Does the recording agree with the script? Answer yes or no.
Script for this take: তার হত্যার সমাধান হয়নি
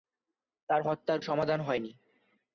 yes